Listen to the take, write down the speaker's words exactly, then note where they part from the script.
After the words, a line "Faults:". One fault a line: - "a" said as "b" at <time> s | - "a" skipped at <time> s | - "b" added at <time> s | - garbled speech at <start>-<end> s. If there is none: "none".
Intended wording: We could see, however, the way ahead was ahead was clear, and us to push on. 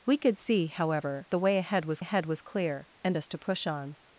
We could see, however, the way ahead was ahead was clear, and us to push on.
Faults:
none